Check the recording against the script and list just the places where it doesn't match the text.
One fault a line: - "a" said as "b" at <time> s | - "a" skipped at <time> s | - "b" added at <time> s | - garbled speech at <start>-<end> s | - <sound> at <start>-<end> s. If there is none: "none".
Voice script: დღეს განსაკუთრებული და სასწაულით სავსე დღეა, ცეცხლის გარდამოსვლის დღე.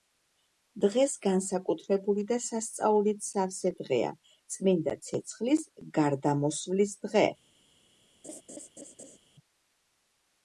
- "წმინდა" added at 4.5 s
- laugh at 8.2-9.2 s